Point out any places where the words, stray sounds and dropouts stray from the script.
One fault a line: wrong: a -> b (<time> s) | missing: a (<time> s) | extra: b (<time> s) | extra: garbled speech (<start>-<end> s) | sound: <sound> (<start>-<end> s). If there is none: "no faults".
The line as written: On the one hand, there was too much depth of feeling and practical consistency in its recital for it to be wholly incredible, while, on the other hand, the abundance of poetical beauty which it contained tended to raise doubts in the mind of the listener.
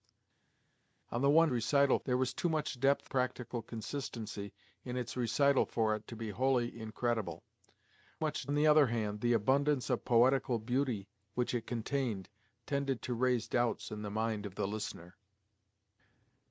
wrong: hand -> recital (1.5 s)
missing: of feeling and (3.1 s)
wrong: while -> much (8.2 s)